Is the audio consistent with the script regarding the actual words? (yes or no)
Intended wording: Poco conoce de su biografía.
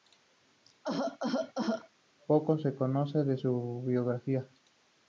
no